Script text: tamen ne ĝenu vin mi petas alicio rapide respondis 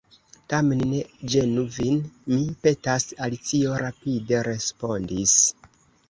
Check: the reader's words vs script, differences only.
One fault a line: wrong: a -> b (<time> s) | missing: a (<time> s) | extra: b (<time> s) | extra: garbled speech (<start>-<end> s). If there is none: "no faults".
no faults